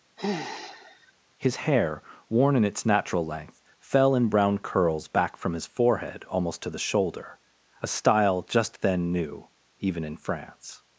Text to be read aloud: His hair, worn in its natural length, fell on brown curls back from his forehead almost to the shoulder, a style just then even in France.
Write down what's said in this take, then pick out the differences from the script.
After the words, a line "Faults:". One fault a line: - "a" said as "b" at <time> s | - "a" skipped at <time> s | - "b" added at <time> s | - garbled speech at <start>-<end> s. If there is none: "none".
His hair, worn in its natural length, fell in brown curls back from his forehead almost to the shoulder, a style just then new, even in France.
Faults:
- "on" said as "in" at 4.1 s
- "new" added at 9.1 s